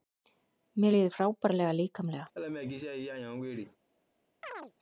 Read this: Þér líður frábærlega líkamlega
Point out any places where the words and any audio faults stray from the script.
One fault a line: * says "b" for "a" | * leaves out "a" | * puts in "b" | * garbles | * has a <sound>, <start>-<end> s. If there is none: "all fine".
* says "Mér" for "Þér"
* has a laugh, 2.3-3.8 s
* has a chirp, 4.4-4.7 s